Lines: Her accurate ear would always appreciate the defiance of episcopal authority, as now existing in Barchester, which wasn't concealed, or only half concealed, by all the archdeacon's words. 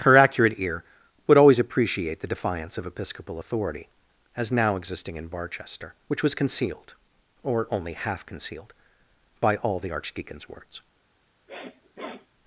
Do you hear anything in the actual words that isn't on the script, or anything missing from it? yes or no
yes